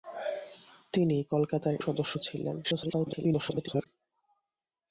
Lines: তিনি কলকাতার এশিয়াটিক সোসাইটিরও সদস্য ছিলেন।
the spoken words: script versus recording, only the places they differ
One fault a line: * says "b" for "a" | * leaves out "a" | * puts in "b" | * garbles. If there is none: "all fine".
* leaves out "এশিয়াটিক সোসাইটিরও"
* garbles